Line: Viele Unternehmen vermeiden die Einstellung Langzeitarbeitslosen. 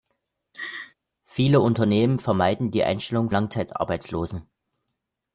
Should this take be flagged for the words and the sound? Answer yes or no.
yes